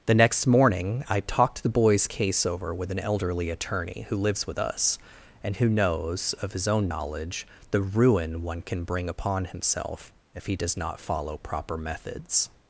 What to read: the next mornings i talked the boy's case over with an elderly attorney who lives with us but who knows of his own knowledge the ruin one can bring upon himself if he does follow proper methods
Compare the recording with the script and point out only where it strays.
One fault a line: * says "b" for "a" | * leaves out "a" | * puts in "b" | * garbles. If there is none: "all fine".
* says "morning" for "mornings"
* says "and" for "but"
* puts in "not"